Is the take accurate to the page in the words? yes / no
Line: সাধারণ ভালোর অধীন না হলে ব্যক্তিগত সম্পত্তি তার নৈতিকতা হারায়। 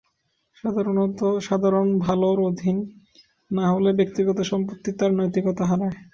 yes